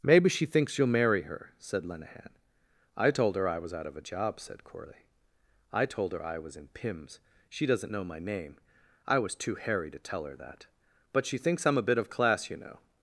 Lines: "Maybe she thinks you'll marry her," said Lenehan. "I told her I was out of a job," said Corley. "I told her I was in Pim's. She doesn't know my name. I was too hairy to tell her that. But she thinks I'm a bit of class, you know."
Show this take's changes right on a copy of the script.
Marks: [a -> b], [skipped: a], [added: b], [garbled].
"Maybe she thinks you'll marry her," said Lenehan. "I told her I was out of a job," said Corley. "I told her I was in Pim's. She doesn't know my name. I was too hairy to tell her that. But she thinks I'm a bit of class, you know."